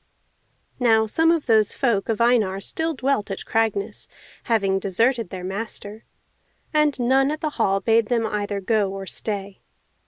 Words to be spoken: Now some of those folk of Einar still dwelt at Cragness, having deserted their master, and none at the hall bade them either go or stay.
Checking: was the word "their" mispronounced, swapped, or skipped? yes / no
no